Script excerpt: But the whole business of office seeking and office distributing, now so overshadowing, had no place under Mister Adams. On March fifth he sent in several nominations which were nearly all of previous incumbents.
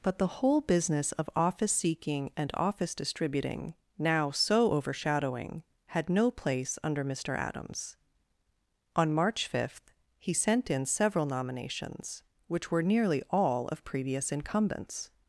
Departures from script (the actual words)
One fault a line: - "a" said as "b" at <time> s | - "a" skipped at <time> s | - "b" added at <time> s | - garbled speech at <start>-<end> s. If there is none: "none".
none